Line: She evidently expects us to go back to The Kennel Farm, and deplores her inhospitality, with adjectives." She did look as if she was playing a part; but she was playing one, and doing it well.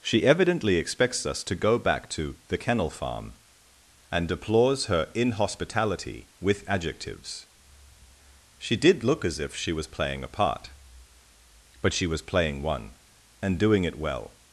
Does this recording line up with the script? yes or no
yes